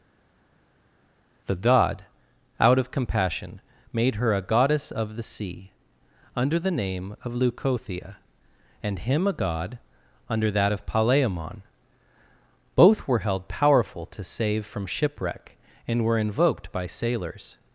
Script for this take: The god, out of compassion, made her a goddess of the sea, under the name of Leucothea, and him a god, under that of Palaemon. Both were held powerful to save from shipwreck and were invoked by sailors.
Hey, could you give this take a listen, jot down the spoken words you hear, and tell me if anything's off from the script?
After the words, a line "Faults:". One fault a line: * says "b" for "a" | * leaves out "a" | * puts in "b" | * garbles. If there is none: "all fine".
The god, out of compassion, made her a goddess of the sea, under the name of Leucothea, and him a god, under that of Palaemon. Both were held powerful to save from shipwreck and were invoked by sailors.
Faults:
all fine